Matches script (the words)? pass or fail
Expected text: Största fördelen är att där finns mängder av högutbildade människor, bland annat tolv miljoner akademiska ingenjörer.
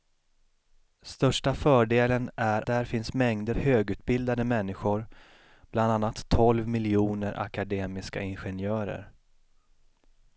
fail